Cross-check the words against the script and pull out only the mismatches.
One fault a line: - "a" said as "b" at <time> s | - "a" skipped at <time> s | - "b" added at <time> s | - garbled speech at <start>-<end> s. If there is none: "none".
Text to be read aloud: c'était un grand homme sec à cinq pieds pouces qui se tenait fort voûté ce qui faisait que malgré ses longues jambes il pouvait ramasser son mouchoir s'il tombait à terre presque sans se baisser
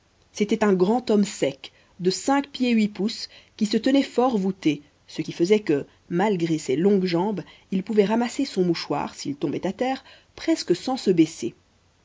- "à" said as "de" at 2.0 s
- "huit" added at 2.7 s